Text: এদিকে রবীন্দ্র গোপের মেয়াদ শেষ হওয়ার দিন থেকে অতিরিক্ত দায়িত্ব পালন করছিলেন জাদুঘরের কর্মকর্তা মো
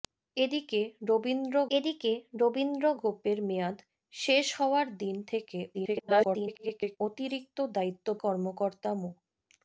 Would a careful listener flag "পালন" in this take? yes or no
yes